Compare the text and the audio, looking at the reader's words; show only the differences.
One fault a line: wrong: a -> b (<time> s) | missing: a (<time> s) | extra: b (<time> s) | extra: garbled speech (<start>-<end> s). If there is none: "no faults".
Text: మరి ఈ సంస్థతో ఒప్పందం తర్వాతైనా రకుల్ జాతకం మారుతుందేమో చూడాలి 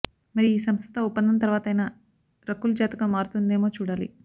no faults